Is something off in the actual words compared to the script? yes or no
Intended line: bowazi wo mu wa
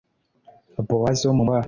no